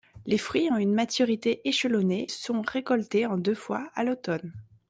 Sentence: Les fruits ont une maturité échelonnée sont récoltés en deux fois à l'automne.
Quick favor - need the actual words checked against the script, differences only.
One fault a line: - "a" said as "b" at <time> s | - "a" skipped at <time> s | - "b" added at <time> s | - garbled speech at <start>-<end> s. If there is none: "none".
none